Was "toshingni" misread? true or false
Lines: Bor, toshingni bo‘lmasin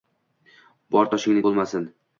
false